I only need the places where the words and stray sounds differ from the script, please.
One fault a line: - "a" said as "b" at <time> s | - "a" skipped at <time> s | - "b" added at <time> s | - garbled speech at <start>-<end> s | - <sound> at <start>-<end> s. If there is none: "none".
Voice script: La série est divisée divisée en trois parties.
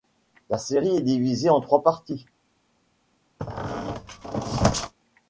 - "divisée" skipped at 1.5 s
- squeak at 3.4-4.9 s